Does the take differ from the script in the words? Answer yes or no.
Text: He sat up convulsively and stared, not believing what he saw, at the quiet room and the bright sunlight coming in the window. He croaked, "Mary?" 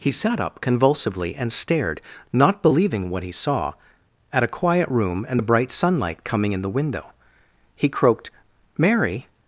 yes